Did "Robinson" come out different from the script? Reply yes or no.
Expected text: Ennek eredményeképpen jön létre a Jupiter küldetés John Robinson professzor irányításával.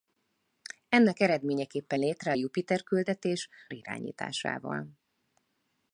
yes